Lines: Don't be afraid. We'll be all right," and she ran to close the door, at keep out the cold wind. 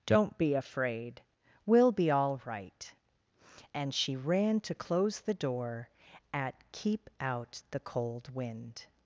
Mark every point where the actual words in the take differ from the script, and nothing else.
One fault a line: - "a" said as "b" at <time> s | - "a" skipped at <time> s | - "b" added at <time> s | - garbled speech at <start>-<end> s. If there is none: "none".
none